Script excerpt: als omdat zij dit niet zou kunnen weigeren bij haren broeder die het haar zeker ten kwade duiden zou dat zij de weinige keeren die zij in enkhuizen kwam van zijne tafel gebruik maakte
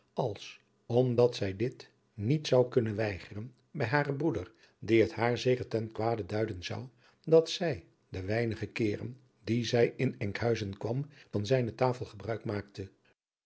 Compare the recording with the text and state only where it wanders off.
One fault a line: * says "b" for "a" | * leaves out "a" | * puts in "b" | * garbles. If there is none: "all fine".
all fine